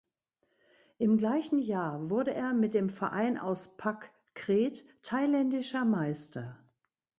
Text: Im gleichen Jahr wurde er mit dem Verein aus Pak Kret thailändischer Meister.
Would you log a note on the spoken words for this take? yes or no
no